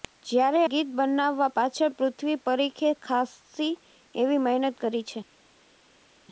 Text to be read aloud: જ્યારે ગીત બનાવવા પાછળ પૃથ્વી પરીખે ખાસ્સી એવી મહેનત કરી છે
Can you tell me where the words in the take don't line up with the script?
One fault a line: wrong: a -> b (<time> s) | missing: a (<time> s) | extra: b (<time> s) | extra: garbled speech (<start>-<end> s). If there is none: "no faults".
no faults